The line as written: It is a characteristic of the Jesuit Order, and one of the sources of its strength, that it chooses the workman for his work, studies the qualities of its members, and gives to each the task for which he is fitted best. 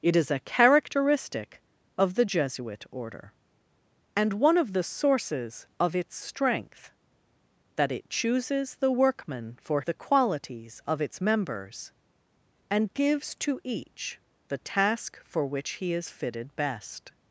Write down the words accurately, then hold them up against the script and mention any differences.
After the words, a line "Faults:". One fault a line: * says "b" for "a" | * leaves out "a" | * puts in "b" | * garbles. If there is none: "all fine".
It is a characteristic of the Jesuit Order, and one of the sources of its strength, that it chooses the workman for the qualities of its members, and gives to each the task for which he is fitted best.
Faults:
* leaves out "his work studies"